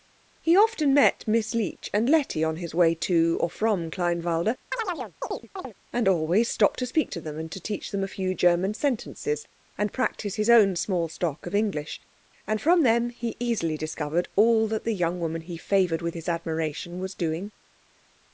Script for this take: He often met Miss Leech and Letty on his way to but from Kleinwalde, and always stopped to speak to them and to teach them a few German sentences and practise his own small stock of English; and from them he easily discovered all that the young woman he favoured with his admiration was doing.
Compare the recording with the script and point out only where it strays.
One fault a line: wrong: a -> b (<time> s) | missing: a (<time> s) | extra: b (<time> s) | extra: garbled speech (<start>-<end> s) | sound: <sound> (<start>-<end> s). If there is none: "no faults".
wrong: but -> or (3.4 s)
sound: chirp (4.7-5.7 s)